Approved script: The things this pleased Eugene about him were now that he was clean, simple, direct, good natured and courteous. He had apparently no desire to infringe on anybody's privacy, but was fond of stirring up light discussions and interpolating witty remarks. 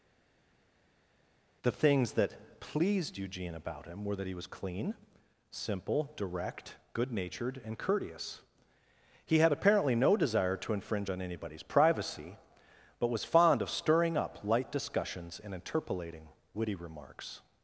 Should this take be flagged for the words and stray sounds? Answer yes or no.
yes